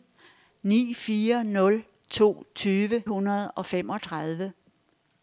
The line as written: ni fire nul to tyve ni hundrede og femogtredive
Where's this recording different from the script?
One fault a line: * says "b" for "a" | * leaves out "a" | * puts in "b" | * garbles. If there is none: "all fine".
* leaves out "ni"